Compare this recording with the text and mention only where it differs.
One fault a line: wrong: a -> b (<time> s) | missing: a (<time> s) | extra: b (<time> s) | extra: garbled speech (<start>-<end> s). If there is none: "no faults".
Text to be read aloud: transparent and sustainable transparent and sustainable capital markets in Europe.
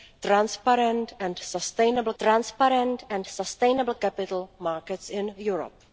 no faults